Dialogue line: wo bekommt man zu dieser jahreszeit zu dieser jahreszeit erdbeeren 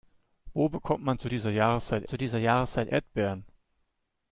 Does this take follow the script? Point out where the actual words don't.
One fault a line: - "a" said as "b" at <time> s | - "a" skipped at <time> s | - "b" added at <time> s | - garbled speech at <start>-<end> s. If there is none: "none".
none